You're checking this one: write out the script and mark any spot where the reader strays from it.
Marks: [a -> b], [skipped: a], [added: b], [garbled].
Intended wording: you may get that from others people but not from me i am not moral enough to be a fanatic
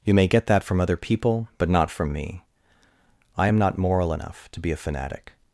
you may get that from [others -> other] people but not from me i am not moral enough to be a fanatic